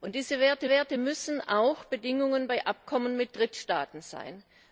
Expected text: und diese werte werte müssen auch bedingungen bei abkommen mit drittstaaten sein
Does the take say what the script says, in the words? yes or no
yes